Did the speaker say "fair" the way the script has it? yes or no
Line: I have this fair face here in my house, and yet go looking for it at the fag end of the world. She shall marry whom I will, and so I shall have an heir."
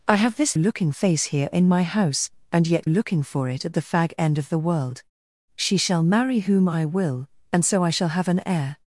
no